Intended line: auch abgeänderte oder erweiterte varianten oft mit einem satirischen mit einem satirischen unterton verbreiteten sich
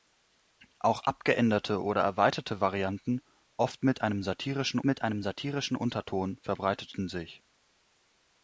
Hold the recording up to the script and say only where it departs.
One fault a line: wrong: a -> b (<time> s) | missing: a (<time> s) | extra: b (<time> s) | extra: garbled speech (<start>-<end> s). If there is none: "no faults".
no faults